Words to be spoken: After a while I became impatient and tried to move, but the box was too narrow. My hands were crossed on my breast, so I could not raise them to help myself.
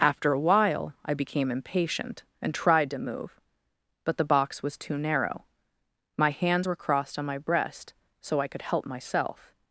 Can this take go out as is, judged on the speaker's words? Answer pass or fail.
fail